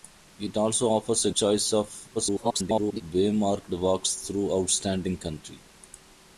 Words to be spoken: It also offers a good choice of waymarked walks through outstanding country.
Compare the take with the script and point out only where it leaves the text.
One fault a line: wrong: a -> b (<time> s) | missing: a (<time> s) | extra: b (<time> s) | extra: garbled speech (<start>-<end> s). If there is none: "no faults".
missing: good (1.3 s)
extra: garbled speech (2.1-3.0 s)